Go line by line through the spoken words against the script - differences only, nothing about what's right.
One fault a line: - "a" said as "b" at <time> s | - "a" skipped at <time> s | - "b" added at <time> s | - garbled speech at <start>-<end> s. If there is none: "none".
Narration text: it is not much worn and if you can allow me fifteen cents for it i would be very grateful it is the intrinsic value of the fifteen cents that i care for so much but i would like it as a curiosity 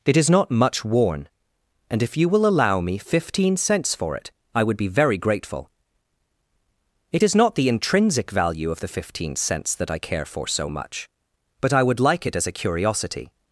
- "can" said as "will" at 2.3 s
- "not" added at 7.4 s